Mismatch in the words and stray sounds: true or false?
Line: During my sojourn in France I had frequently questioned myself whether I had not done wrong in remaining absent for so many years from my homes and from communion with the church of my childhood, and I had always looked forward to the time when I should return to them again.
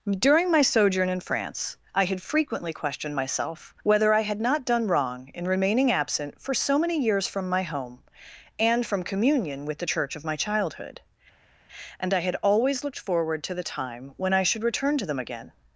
true